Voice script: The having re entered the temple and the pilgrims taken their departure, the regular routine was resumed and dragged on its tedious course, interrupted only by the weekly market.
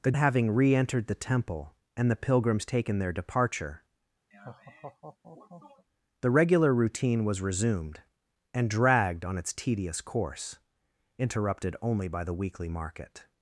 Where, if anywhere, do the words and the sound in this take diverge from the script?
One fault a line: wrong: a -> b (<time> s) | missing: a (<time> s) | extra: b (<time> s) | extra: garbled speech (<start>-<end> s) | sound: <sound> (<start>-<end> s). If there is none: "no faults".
sound: laugh (4.3-5.8 s)